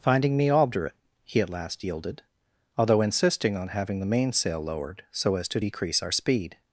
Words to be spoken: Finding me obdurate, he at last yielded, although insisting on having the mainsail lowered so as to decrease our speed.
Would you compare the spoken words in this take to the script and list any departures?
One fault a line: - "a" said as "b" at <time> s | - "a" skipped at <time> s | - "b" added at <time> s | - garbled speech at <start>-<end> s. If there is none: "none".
none